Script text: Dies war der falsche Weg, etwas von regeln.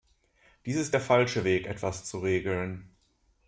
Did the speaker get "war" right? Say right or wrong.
wrong